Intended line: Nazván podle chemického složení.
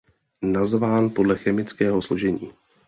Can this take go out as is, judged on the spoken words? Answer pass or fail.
pass